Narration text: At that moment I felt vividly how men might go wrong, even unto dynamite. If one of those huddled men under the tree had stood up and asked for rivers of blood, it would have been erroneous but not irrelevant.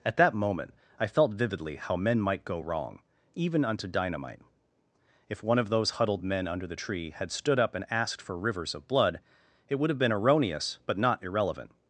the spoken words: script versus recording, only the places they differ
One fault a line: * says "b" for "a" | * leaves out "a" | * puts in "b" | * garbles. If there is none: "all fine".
all fine